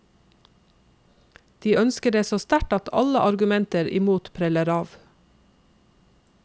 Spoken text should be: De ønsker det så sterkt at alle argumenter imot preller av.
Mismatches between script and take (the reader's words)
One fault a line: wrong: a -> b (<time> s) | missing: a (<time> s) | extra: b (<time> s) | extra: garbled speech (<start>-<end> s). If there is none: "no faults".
no faults